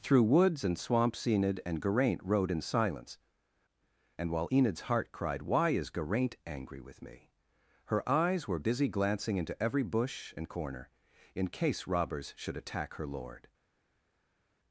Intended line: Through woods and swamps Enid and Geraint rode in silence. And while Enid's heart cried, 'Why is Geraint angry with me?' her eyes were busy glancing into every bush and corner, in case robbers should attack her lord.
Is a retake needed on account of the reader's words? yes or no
no